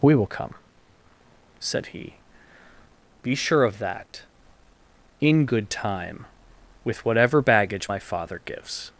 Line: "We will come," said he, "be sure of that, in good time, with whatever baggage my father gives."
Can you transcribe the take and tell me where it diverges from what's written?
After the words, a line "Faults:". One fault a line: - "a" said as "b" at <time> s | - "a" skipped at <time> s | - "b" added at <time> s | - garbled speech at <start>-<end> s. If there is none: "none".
"We will come," said he, "be sure of that, in good time, with whatever baggage my father gives."
Faults:
none